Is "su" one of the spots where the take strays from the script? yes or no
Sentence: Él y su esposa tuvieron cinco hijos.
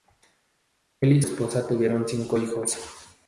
yes